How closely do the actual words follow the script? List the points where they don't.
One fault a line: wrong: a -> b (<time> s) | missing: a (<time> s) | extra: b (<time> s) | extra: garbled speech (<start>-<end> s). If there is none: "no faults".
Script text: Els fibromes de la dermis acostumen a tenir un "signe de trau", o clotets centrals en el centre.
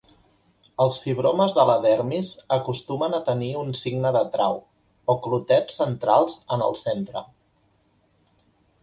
no faults